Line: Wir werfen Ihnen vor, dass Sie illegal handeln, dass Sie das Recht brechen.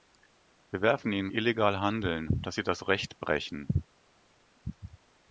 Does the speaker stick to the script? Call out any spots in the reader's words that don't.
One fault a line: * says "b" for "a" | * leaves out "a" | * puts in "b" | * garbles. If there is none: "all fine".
* leaves out "vor dass Sie"